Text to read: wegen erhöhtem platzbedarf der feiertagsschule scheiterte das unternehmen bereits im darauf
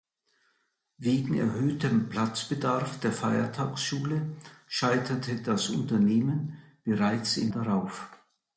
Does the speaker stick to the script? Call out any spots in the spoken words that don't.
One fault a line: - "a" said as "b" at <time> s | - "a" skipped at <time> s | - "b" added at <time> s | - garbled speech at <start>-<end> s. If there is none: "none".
none